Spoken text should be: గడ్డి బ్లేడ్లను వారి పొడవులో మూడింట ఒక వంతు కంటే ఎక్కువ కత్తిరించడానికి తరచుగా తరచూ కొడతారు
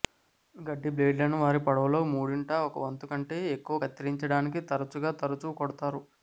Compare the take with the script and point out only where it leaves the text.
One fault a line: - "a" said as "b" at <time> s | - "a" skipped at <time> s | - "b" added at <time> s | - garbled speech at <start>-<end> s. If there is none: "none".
none